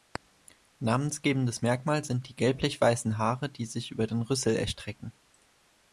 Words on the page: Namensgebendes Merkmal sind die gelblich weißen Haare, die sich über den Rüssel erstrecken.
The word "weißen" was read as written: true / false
true